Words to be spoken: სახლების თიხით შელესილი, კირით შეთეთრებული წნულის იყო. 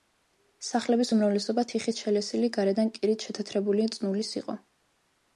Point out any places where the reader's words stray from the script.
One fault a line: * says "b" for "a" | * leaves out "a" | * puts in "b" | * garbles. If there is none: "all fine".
* puts in "უმრავლესობა"
* puts in "გარედან"